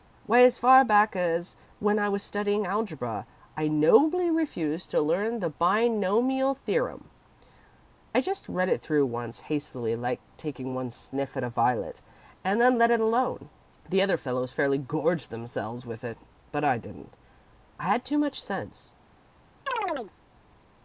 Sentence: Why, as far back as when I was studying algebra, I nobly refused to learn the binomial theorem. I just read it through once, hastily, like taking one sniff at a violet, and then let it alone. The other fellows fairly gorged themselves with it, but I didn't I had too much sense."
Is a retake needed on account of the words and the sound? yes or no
yes